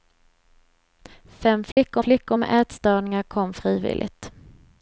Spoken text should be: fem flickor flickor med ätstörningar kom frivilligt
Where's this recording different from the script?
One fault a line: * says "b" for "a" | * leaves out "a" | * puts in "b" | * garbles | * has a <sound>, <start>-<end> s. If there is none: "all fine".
* has a dropout, 1.7-1.8 s